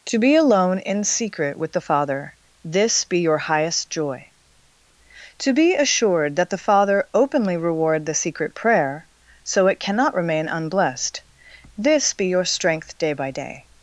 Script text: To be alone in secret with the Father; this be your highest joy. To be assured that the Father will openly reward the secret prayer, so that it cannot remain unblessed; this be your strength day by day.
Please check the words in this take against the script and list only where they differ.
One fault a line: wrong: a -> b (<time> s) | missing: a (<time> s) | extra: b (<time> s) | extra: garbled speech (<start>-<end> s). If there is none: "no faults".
missing: will (7.1 s)
missing: that (9.7 s)